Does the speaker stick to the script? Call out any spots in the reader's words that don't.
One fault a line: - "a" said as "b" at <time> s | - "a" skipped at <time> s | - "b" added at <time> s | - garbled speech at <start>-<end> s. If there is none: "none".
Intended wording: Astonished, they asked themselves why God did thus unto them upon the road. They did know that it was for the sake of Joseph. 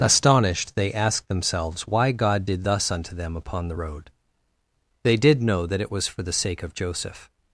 none